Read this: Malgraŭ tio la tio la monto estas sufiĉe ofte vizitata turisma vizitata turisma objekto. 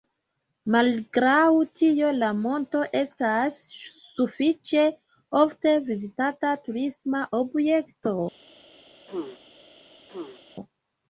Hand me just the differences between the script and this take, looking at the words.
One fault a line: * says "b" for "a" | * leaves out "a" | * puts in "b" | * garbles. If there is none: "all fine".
* leaves out "tio la"
* leaves out "vizitata turisma"